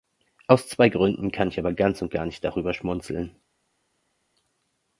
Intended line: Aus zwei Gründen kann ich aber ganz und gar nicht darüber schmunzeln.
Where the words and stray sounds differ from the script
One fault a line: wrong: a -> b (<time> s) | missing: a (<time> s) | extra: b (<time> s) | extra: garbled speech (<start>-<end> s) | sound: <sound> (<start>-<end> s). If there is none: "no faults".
no faults